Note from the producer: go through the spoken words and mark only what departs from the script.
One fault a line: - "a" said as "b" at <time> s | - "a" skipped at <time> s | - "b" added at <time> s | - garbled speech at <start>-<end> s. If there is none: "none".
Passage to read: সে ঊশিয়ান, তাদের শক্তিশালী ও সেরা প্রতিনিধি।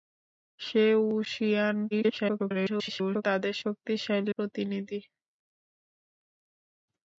- garbled speech at 1.9-3.2 s
- "ও সেরা" skipped at 4.3 s